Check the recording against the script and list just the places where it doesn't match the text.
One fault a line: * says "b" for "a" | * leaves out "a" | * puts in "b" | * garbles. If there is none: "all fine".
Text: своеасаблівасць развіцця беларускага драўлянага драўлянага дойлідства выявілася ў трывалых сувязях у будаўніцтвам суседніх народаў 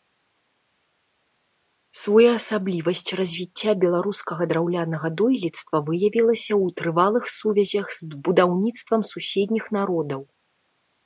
* leaves out "драўлянага"
* says "з" for "у"